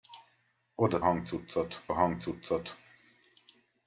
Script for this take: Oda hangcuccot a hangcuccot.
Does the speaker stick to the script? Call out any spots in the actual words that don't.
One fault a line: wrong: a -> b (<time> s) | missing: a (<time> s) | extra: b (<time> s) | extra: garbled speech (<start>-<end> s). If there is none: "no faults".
no faults